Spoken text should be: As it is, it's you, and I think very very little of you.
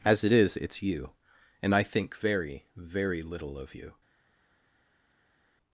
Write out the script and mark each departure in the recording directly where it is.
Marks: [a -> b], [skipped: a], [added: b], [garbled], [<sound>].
As it is, it's you, and I think very very little of you.